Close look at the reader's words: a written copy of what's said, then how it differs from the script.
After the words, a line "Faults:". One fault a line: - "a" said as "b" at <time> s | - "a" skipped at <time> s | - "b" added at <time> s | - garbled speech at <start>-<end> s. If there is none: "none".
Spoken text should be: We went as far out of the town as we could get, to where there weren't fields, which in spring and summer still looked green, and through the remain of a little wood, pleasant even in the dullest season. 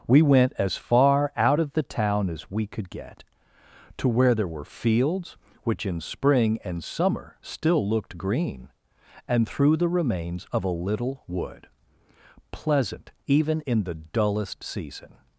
We went as far out of the town as we could get, to where there were fields, which in spring and summer still looked green, and through the remains of a little wood, pleasant even in the dullest season.
Faults:
- "weren't" said as "were" at 4.5 s
- "remain" said as "remains" at 9.9 s